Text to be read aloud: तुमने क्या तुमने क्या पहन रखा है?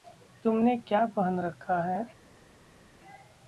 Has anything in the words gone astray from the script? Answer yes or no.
yes